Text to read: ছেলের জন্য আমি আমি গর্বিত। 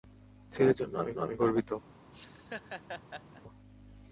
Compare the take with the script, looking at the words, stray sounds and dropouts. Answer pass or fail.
fail